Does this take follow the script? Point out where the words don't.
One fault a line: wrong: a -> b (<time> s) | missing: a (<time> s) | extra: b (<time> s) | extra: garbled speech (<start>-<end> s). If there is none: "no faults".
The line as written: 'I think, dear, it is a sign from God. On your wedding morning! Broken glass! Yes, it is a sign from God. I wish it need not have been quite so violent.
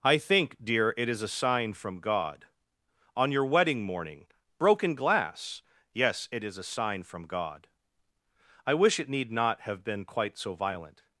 no faults